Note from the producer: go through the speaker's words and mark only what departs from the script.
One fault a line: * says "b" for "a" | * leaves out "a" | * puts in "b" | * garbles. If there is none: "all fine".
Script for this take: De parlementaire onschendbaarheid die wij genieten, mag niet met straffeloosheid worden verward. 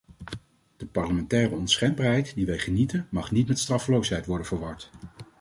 all fine